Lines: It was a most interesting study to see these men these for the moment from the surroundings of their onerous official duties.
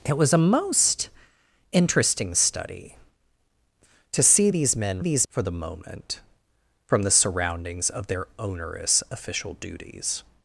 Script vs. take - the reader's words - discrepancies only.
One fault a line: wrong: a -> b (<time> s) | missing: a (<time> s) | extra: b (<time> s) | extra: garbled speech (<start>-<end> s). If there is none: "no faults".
no faults